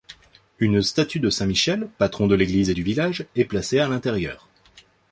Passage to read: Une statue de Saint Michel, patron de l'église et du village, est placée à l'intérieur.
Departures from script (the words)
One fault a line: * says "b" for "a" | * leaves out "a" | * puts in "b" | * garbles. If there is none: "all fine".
all fine